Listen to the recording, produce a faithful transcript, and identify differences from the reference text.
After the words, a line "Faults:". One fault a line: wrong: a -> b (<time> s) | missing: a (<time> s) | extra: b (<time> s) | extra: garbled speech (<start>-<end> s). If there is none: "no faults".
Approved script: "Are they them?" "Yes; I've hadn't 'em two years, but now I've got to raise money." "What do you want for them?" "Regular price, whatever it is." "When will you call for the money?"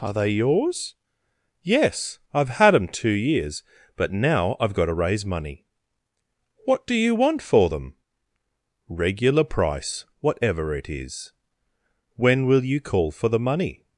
"Are they yours?" "Yes; I've had 'em two years, but now I've got to raise money." "What do you want for them?" "Regular price, whatever it is." "When will you call for the money?"
Faults:
wrong: them -> yours (0.3 s)
wrong: hadn't -> had (2.5 s)